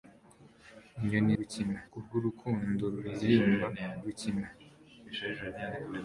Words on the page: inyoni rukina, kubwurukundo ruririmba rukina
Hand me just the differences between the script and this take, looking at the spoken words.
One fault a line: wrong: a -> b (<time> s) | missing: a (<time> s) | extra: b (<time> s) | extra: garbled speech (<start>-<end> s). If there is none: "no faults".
no faults